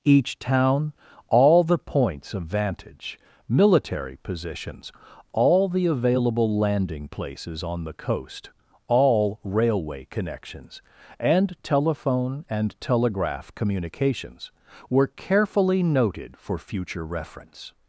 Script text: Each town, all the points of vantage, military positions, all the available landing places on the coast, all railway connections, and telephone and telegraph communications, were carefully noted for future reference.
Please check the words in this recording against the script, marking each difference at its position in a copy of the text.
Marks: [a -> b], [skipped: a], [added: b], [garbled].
Each town, all the points of vantage, military positions, all the available landing places on the coast, all railway connections, and telephone and telegraph communications, were carefully noted for future reference.